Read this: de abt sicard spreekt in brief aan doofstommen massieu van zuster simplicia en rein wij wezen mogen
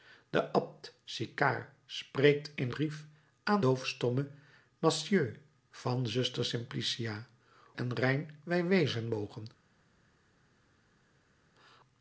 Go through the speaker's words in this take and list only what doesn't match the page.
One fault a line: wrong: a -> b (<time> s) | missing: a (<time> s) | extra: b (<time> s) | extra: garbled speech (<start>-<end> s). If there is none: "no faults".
no faults